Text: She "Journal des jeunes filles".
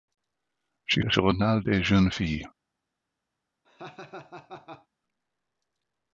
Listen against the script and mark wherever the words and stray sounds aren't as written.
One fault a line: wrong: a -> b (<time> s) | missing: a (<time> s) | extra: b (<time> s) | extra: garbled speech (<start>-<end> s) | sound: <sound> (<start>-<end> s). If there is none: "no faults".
sound: laugh (3.6-4.9 s)